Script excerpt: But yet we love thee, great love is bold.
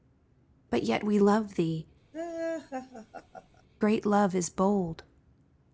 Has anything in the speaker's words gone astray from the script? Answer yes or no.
no